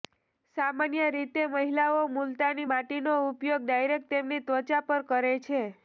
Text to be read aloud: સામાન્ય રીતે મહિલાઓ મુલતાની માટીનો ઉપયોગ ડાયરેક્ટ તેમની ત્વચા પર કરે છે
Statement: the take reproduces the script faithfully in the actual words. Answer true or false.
true